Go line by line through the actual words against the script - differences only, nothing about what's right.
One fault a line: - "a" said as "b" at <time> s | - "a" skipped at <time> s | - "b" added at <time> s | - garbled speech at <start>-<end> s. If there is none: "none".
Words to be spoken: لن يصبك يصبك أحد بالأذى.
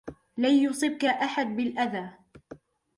- "يصبك" skipped at 1.1 s